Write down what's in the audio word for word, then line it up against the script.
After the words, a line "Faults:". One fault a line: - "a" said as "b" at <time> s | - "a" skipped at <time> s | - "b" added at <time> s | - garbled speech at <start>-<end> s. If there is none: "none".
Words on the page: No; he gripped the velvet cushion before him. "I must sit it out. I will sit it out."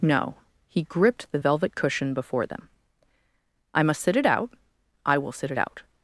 No; he gripped the velvet cushion before them. "I must sit it out. I will sit it out."
Faults:
- "him" said as "them" at 2.4 s